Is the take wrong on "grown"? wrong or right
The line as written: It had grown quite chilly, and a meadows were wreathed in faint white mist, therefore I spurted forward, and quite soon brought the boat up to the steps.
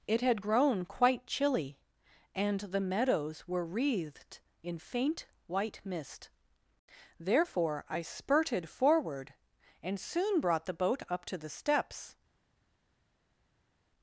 right